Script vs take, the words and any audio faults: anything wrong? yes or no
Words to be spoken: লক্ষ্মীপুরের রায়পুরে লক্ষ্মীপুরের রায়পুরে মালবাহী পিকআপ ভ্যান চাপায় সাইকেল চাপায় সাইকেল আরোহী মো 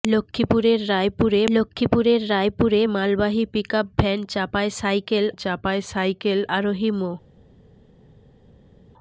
no